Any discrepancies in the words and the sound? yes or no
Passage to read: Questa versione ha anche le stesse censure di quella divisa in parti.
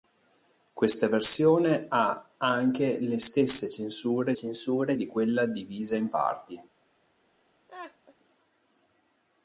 yes